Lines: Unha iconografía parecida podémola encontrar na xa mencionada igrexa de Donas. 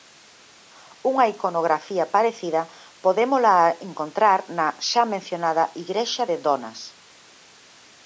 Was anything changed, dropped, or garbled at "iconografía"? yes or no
no